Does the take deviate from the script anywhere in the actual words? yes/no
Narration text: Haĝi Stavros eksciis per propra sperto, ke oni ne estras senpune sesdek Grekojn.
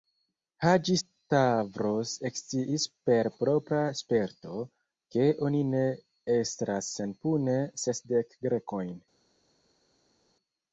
no